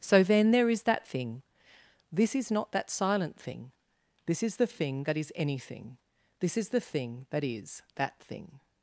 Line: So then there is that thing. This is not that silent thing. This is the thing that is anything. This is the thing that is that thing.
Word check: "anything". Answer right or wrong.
right